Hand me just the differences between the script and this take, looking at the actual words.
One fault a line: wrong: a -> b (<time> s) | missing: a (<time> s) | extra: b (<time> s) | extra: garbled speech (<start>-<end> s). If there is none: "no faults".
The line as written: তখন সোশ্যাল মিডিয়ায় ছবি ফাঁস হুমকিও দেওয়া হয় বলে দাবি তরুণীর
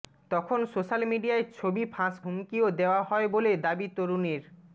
no faults